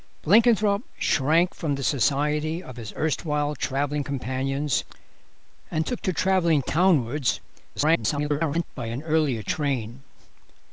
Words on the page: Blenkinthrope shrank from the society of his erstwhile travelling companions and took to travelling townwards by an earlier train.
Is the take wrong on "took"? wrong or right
right